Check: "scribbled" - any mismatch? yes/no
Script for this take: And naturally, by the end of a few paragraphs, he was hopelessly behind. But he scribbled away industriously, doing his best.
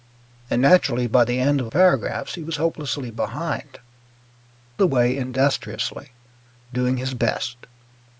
yes